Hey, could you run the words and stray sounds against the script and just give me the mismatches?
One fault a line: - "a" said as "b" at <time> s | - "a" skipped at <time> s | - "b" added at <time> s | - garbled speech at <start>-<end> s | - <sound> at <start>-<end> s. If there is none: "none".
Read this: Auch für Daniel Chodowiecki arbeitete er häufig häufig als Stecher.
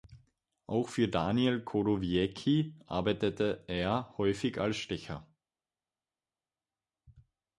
- "häufig" skipped at 4.6 s